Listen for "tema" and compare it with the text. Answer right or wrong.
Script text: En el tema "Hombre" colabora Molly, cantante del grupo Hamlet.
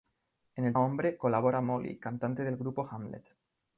wrong